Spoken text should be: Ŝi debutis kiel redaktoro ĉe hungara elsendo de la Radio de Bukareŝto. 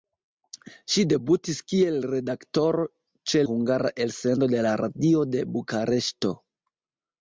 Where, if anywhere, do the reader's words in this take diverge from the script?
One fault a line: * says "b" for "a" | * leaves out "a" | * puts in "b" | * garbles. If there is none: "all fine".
all fine